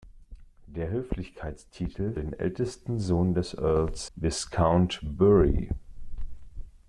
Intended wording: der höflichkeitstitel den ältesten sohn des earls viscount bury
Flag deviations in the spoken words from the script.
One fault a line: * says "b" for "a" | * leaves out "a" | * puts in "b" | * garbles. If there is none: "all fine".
all fine